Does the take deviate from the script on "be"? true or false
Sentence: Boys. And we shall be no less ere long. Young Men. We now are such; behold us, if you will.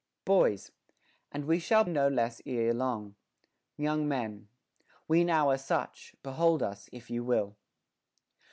true